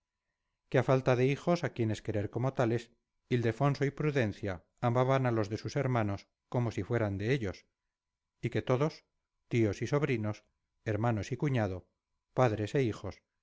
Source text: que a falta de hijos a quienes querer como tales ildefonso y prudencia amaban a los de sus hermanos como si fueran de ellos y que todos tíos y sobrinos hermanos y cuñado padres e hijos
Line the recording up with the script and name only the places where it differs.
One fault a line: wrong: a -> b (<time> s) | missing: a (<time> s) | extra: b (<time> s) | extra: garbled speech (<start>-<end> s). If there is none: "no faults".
no faults